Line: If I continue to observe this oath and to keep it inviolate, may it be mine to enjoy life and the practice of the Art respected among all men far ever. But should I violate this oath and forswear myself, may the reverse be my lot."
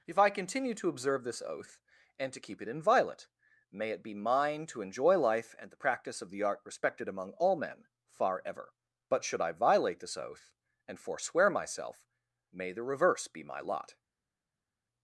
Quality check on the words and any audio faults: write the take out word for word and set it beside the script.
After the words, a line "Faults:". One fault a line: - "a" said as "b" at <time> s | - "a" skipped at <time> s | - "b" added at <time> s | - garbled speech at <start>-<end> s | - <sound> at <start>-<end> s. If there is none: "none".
If I continue to observe this oath and to keep it inviolate, may it be mine to enjoy life and the practice of the Art respected among all men far ever. But should I violate this oath and forswear myself, may the reverse be my lot."
Faults:
none